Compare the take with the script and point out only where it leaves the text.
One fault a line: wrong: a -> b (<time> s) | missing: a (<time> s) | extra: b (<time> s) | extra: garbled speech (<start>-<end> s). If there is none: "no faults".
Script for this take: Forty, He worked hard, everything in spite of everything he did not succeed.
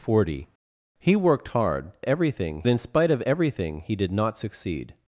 no faults